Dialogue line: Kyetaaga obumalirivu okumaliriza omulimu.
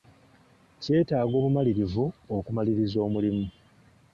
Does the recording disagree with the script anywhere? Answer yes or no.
no